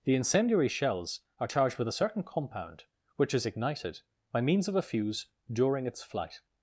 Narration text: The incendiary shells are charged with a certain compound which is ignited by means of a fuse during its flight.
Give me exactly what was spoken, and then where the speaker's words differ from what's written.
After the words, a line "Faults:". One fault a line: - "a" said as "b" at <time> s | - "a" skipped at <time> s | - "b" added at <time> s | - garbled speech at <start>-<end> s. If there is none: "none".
The incendiary shells are charged with a certain compound which is ignited by means of a fuse during its flight.
Faults:
none